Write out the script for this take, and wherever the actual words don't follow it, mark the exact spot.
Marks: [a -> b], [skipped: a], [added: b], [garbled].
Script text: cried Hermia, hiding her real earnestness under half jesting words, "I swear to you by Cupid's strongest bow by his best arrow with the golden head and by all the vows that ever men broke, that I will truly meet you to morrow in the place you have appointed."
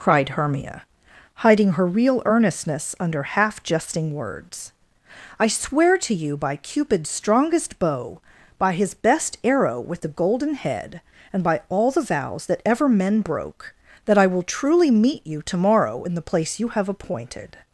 cried Hermia, hiding her real earnestness under half jesting words, "I swear to you by Cupid's strongest bow by his best arrow with the golden head and by all the vows that ever men broke, that I will truly meet you to morrow in the place you have appointed."